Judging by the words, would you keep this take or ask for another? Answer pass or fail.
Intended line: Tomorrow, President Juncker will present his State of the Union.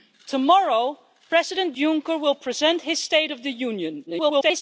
fail